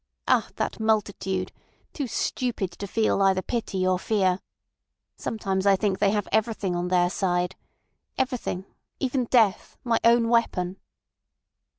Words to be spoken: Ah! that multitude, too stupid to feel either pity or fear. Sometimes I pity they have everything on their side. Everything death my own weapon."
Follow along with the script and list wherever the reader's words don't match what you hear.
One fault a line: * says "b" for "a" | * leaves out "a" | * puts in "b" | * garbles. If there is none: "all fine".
* says "think" for "pity"
* puts in "even"